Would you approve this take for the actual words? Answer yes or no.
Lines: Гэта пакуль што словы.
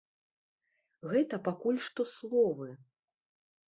yes